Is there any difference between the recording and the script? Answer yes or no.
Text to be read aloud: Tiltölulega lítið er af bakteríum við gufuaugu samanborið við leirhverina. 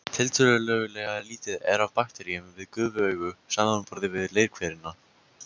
no